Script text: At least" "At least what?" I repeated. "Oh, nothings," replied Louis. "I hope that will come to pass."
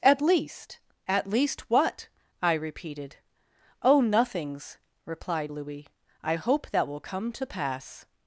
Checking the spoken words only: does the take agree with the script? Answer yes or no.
yes